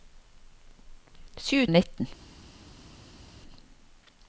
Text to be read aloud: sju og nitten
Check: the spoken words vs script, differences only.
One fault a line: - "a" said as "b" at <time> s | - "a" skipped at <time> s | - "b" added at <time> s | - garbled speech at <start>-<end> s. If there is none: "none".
none